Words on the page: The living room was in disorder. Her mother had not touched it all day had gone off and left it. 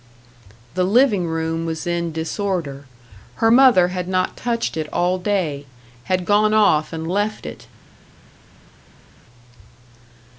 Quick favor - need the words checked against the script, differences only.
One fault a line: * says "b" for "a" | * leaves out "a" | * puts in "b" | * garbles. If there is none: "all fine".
all fine